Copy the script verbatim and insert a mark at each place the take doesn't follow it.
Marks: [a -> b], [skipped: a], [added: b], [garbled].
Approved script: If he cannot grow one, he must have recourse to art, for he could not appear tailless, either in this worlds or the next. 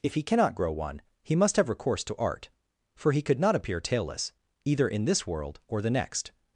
If he cannot grow one, he must have recourse to art, for he could not appear tailless, either in this [worlds -> world] or the next.